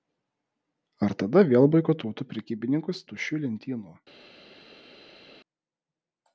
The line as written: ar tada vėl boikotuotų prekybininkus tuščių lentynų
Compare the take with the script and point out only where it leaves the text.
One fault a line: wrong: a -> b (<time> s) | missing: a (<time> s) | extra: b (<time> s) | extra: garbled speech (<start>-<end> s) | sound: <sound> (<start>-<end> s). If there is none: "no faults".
no faults